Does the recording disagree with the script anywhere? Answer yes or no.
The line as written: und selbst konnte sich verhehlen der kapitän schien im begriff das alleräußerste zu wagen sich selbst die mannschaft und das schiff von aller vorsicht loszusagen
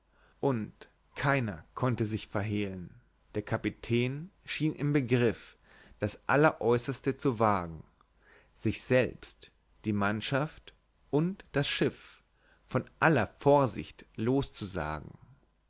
yes